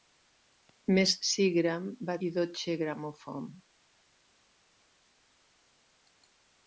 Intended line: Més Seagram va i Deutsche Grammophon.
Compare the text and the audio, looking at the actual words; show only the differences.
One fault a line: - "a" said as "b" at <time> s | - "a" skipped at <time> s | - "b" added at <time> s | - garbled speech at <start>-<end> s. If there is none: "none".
none